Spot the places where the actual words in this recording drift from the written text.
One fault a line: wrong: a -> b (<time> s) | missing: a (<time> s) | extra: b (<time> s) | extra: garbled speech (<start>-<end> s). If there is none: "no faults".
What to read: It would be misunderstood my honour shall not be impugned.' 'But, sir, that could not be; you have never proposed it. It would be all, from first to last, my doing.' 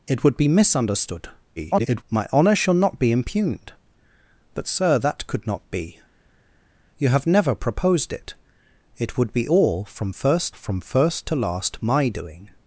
extra: garbled speech (1.6-2.0 s)
extra: from first (10.5 s)